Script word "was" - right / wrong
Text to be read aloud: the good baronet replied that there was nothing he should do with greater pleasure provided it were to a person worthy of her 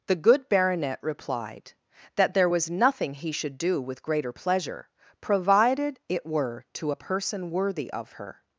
right